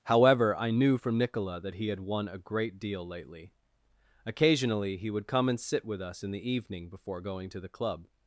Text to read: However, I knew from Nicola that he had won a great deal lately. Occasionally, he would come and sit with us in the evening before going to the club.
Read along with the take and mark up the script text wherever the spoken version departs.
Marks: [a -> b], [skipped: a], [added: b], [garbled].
However, I knew from Nicola that he had won a great deal lately. Occasionally, he would come and sit with us in the evening before going to the club.